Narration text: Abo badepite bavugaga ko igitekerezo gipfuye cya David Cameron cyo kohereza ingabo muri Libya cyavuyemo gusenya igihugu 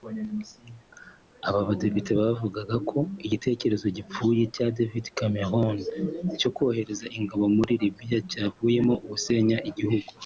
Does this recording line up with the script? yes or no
no